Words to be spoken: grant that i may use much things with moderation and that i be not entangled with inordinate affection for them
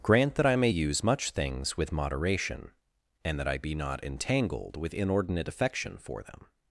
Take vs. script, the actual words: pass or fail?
pass